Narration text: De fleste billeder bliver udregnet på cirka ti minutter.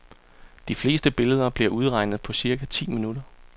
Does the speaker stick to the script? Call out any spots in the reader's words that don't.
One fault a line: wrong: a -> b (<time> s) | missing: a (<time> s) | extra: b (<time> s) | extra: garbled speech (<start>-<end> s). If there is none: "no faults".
no faults